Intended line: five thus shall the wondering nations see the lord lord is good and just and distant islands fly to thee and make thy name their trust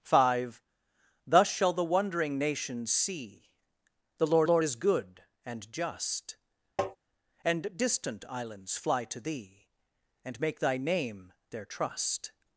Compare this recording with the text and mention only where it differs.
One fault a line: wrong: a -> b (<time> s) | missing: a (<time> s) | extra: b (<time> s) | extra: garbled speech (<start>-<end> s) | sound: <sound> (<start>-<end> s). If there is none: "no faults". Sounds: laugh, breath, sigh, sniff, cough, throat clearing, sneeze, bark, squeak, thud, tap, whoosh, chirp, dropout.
sound: tap (6.8-7.0 s)